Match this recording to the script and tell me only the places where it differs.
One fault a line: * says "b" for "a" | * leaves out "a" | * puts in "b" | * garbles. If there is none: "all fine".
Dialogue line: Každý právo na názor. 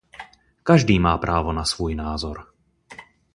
* puts in "má"
* puts in "svůj"